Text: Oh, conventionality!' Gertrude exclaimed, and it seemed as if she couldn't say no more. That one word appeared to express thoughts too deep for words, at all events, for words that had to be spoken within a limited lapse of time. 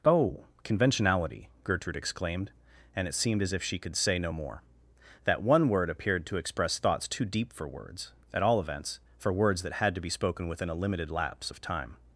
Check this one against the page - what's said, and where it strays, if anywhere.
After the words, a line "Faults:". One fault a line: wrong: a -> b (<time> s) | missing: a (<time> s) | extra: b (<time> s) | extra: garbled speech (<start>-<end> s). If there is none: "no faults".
Oh, conventionality!' Gertrude exclaimed, and it seemed as if she could say no more. That one word appeared to express thoughts too deep for words, at all events, for words that had to be spoken within a limited lapse of time.
Faults:
wrong: couldn't -> could (3.8 s)